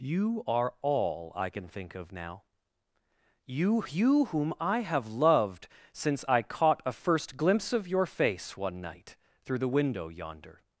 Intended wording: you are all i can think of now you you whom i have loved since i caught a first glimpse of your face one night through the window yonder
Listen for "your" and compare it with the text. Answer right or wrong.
right